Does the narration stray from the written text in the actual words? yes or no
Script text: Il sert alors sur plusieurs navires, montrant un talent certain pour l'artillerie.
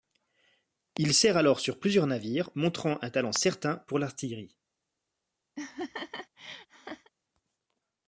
no